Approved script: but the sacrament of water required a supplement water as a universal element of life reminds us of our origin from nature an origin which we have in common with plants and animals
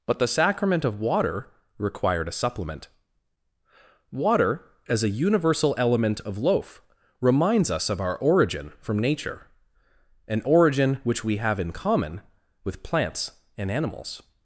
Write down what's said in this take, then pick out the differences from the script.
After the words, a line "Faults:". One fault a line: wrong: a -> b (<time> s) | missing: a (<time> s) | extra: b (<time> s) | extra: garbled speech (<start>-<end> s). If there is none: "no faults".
but the sacrament of water required a supplement water as a universal element of loaf reminds us of our origin from nature an origin which we have in common with plants and animals
Faults:
wrong: life -> loaf (6.4 s)